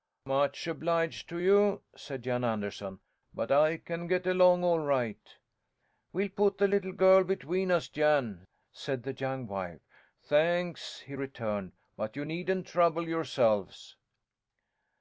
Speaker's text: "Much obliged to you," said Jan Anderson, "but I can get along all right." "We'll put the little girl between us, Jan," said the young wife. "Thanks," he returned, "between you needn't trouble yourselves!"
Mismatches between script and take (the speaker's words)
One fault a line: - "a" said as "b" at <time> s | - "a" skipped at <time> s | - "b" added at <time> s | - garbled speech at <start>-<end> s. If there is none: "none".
- "between" said as "but" at 12.0 s